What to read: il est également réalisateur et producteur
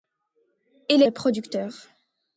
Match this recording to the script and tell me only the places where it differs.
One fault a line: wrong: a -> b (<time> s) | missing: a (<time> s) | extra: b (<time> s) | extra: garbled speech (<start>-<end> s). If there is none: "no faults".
missing: est également réalisateur (1.0 s)